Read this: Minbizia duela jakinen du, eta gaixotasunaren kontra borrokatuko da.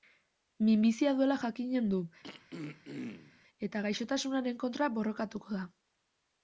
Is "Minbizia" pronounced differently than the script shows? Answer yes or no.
no